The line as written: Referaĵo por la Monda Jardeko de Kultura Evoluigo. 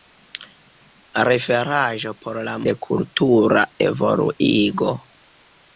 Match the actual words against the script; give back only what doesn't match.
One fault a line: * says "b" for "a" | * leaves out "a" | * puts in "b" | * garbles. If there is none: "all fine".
* leaves out "Monda Jardeko"